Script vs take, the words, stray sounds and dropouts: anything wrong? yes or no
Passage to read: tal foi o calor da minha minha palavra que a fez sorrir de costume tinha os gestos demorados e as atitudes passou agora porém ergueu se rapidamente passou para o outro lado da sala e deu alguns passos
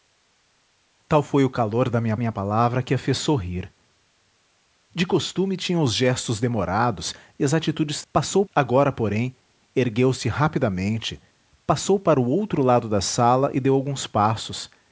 no